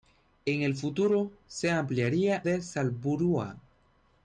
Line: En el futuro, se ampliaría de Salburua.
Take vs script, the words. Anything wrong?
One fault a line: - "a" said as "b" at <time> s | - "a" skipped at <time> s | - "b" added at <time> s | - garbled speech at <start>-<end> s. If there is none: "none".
none